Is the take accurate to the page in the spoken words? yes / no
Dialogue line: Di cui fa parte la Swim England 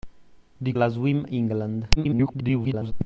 no